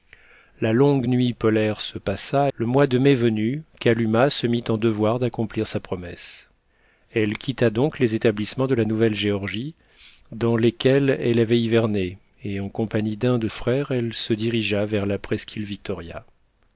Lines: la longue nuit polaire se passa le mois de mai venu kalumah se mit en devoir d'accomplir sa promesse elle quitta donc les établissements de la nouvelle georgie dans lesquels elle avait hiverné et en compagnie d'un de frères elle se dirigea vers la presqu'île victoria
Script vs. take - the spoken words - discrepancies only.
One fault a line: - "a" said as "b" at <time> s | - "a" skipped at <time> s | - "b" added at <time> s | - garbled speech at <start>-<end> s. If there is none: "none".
none